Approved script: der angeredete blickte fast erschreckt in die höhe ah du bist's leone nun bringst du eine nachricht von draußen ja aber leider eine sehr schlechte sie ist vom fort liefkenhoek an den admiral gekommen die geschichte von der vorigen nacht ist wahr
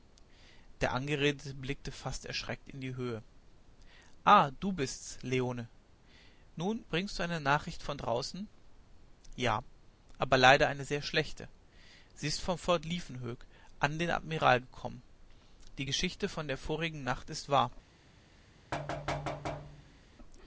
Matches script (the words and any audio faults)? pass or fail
fail